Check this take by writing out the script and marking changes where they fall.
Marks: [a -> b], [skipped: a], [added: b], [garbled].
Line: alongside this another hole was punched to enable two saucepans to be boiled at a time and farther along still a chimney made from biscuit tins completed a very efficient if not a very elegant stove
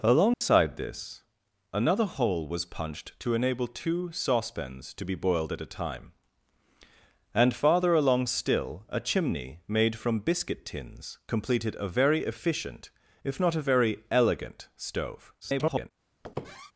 alongside this another hole was punched to enable two saucepans to be boiled at a time and farther along still a chimney made from biscuit tins completed a very efficient if not a very elegant stove [garbled]